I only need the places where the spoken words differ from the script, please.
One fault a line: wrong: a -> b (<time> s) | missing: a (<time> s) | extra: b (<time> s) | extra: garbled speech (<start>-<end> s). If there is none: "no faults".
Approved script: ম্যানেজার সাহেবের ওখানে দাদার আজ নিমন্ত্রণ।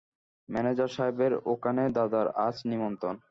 no faults